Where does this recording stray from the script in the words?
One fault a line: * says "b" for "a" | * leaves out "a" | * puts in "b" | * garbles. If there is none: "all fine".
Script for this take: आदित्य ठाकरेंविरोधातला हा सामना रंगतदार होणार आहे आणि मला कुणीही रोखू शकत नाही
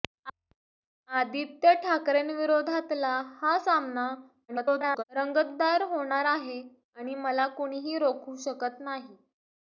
* garbles